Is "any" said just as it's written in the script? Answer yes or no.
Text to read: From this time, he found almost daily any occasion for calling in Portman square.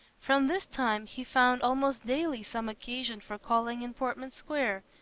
no